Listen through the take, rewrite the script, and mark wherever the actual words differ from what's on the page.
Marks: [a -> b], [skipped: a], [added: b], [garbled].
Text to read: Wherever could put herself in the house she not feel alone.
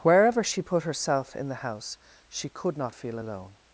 Wherever [could -> she] put herself in the house she [added: could] not feel alone.